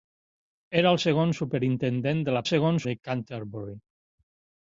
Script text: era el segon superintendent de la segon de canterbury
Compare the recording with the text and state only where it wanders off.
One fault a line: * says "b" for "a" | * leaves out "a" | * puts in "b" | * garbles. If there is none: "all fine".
all fine